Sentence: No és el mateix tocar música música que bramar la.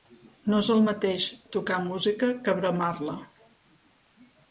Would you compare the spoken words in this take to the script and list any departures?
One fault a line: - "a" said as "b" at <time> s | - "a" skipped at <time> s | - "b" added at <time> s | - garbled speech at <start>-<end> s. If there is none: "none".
- "música" skipped at 2.3 s